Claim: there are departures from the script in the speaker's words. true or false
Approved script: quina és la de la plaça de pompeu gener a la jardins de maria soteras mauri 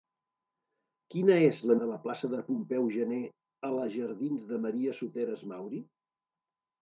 false